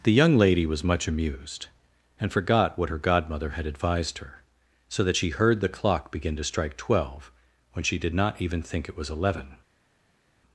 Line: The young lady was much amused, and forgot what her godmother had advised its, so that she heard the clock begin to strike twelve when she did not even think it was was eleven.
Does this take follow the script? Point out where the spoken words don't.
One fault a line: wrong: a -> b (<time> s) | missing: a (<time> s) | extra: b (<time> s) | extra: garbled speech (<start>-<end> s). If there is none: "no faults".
wrong: its -> her (4.2 s)
missing: was (9.1 s)